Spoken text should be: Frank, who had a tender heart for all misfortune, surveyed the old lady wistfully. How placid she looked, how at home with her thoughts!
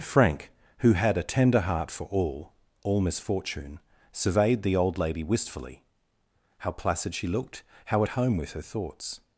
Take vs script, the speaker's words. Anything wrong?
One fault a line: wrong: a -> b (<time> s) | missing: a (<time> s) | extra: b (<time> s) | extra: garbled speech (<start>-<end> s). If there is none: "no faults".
extra: all (2.8 s)